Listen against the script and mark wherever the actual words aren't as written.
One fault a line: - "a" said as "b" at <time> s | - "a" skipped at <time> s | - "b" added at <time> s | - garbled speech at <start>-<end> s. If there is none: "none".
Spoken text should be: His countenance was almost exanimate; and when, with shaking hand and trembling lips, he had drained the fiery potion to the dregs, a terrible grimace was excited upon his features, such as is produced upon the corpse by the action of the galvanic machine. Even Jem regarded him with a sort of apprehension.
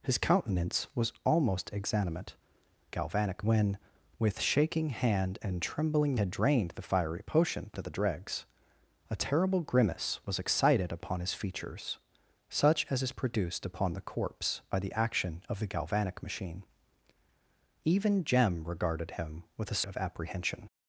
- "and" said as "galvanic" at 2.9 s
- "lips he" skipped at 6.2 s
- "sort" skipped at 19.8 s